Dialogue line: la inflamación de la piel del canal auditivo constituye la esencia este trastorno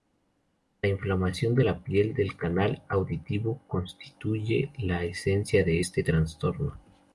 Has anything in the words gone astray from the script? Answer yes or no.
yes